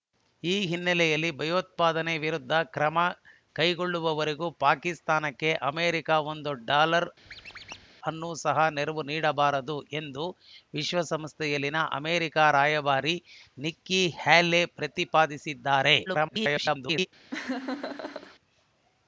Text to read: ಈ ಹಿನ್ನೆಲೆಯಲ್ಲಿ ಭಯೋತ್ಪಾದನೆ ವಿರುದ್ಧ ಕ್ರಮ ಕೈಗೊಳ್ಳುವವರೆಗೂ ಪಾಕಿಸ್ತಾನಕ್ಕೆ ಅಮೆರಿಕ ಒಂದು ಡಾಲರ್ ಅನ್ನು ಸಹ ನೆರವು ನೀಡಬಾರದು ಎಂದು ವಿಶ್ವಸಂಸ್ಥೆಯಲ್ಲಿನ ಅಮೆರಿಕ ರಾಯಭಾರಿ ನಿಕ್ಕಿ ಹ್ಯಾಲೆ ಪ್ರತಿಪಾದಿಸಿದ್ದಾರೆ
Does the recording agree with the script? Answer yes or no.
no